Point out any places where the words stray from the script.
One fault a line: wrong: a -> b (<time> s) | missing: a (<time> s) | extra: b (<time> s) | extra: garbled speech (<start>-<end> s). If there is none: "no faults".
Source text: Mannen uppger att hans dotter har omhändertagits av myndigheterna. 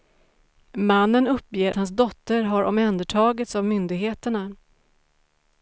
missing: att (1.7 s)